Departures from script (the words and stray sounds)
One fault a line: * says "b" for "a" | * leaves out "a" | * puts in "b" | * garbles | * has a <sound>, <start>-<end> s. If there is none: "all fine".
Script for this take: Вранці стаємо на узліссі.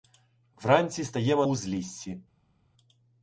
* leaves out "на"